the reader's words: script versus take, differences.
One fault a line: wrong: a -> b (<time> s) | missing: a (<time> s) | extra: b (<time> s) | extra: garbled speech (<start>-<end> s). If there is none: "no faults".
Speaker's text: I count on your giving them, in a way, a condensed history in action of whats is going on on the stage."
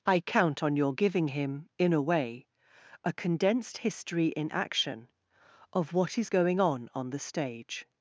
wrong: them -> him (1.3 s)
wrong: whats -> what (5.9 s)